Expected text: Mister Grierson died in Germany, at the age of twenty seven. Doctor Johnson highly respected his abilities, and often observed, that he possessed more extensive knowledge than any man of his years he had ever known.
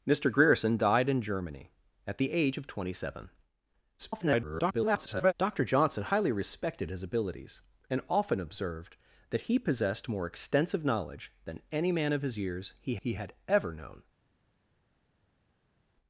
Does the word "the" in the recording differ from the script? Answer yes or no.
no